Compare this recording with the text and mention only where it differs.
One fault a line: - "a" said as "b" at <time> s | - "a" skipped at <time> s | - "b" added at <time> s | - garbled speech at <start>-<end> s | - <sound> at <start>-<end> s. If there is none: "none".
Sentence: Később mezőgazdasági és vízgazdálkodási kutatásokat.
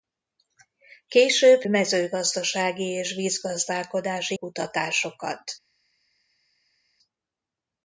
none